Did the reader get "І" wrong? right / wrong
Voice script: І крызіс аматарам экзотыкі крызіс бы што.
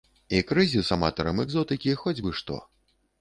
right